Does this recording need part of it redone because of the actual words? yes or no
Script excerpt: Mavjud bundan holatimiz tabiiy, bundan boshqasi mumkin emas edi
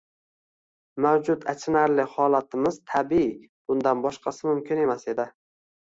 yes